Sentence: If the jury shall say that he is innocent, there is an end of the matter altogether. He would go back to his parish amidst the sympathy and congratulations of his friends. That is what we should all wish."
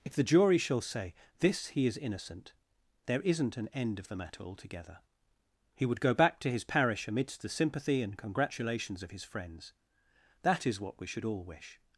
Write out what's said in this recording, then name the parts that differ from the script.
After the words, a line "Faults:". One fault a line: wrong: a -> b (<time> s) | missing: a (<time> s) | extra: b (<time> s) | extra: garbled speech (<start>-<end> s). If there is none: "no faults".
If the jury shall say this he is innocent, there isn't an end of the matter altogether. He would go back to his parish amidst the sympathy and congratulations of his friends. That is what we should all wish."
Faults:
wrong: that -> this (1.4 s)
wrong: is -> isn't (3.2 s)